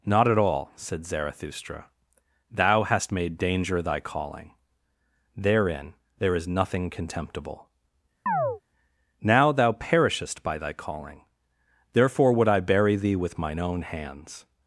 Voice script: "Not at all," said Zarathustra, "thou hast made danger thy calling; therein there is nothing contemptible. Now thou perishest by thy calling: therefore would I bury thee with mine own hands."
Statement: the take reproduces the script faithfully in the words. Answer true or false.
true